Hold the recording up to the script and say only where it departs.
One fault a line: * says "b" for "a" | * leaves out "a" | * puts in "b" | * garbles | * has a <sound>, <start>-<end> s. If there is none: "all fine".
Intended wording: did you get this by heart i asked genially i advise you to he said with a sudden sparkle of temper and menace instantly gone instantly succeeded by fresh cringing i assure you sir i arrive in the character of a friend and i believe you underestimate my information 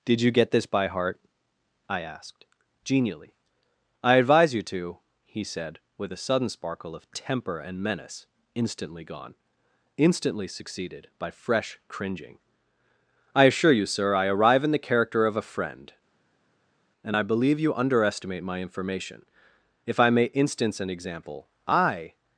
* puts in "if i may instance an example i"